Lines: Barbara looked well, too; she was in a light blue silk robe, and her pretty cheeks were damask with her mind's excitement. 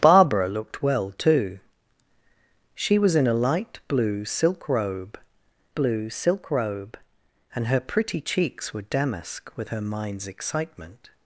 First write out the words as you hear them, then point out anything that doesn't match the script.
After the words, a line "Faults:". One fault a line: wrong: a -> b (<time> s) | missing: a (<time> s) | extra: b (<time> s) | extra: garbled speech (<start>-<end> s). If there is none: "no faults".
Barbara looked well, too; she was in a light blue silk robe blue silk robe, and her pretty cheeks were damask with her mind's excitement.
Faults:
extra: blue silk robe (5.7 s)